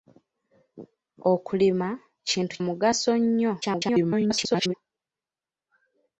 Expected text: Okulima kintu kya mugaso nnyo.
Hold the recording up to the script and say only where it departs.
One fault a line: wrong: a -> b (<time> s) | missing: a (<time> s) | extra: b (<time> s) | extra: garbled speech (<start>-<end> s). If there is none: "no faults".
missing: kya (2.5 s)
extra: garbled speech (3.6-4.7 s)